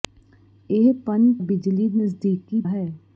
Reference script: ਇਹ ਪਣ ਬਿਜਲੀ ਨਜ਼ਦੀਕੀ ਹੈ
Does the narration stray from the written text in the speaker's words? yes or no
no